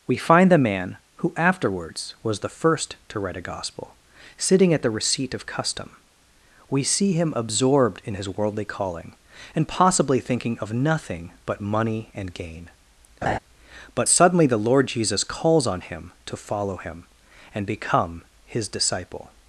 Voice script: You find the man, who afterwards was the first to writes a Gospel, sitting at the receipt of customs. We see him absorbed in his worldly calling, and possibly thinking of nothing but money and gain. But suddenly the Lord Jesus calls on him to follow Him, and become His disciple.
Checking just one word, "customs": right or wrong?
wrong